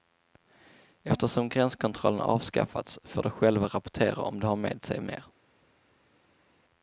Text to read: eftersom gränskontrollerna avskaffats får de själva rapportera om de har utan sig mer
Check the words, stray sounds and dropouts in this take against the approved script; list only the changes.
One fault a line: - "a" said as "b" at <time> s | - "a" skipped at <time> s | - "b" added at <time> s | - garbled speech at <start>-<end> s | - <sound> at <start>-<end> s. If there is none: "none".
- "utan" said as "med" at 4.5 s